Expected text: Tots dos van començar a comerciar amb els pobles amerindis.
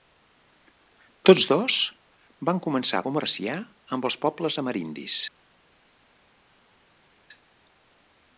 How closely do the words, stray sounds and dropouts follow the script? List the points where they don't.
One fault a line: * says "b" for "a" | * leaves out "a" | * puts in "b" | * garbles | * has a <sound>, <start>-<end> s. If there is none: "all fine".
all fine